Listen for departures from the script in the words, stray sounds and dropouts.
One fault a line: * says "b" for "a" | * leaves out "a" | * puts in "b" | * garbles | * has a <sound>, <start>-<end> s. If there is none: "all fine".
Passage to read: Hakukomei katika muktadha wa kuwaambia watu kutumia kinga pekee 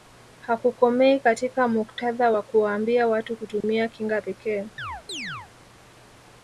* has a dropout, 3.6-3.6 s
* has a chirp, 4.8-5.5 s